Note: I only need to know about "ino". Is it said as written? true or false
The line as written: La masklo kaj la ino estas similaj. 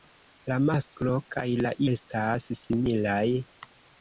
false